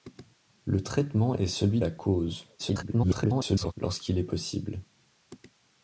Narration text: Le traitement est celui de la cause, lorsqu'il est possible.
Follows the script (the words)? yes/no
no